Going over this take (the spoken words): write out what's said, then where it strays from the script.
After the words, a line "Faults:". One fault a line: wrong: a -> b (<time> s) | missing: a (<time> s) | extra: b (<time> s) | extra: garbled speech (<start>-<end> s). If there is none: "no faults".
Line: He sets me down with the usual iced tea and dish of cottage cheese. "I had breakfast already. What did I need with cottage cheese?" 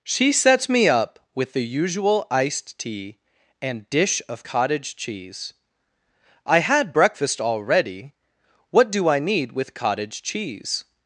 She sets me up with the usual iced tea and dish of cottage cheese. "I had breakfast already. What do I need with cottage cheese?"
Faults:
wrong: He -> She (0.0 s)
wrong: down -> up (0.9 s)
wrong: did -> do (8.9 s)